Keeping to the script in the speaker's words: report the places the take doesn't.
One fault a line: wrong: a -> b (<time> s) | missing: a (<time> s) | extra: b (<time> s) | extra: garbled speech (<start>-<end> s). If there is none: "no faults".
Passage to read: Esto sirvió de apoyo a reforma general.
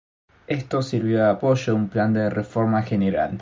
extra: un plan de (1.8 s)